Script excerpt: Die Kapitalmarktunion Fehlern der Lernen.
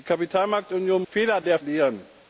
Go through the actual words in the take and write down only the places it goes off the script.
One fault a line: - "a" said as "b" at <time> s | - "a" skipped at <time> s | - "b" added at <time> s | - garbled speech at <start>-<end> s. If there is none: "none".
none